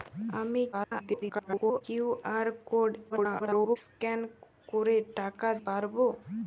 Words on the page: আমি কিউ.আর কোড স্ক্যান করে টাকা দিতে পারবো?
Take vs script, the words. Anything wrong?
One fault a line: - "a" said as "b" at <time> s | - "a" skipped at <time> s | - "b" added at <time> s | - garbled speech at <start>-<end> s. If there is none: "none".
- garbled speech at 0.7-1.8 s
- garbled speech at 3.1-3.8 s
- "দিতে" skipped at 5.5 s